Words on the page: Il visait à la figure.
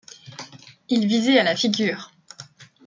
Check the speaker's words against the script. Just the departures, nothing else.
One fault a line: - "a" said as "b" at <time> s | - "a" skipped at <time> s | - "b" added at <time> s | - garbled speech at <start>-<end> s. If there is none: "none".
none